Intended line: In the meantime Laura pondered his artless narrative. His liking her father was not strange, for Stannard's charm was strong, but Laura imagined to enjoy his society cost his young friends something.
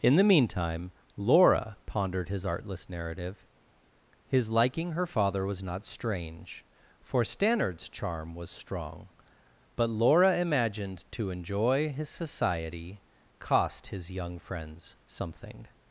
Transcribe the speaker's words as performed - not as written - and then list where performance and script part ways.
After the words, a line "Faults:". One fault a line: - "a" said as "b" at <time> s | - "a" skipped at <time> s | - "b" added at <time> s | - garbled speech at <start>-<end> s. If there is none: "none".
In the meantime Laura pondered his artless narrative. His liking her father was not strange, for Stannard's charm was strong, but Laura imagined to enjoy his society cost his young friends something.
Faults:
none